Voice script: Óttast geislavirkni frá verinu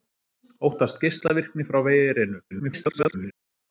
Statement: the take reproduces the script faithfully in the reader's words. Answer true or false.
false